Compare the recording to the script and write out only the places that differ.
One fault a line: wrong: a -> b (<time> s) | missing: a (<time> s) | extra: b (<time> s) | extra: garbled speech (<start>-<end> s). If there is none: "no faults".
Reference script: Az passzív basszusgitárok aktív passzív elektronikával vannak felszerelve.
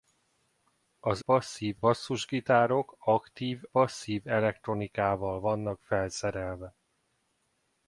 no faults